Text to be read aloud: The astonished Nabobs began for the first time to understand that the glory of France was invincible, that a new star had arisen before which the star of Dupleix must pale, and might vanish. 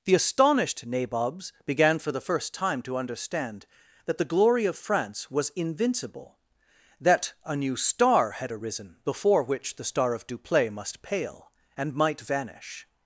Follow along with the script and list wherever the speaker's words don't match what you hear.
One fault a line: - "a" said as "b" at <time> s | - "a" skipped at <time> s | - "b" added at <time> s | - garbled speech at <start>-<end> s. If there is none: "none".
none